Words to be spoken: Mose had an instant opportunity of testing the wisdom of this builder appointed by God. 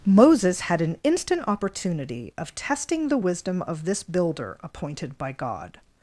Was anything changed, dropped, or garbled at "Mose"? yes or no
yes